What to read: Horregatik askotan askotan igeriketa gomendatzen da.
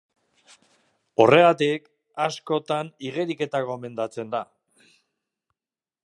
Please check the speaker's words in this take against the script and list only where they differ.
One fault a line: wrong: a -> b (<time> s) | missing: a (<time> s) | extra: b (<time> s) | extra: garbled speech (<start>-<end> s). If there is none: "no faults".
missing: askotan (2.9 s)